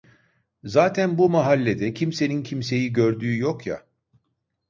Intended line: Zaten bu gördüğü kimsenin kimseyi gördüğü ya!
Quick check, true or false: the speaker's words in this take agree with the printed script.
false